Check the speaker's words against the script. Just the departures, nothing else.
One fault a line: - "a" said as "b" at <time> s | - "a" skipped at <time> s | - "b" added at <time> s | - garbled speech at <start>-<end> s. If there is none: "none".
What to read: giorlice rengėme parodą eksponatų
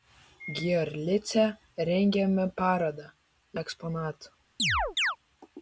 none